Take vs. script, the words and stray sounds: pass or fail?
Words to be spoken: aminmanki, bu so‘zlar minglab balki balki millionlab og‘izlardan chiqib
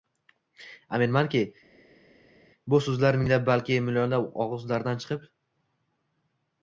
fail